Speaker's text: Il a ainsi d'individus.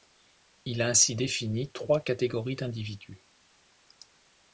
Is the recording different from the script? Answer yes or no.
yes